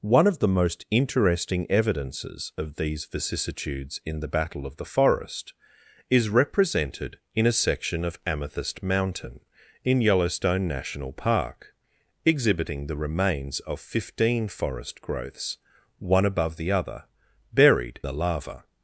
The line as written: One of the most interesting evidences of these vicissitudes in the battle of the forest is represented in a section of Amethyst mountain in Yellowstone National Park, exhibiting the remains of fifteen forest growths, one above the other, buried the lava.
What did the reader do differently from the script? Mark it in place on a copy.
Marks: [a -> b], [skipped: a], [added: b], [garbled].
One of the most interesting evidences of these vicissitudes in the battle of the forest is represented in a section of Amethyst mountain in Yellowstone National Park, exhibiting the remains of fifteen forest growths, one above the other, buried the lava.